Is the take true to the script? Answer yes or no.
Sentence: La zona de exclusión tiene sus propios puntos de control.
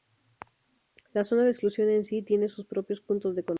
no